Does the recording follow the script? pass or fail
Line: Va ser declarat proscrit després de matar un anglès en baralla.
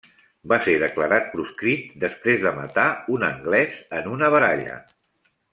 fail